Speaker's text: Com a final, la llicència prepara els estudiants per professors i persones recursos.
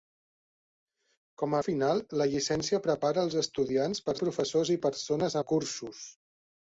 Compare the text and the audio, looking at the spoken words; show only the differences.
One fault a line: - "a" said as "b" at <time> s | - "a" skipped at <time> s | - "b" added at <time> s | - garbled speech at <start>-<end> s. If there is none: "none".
none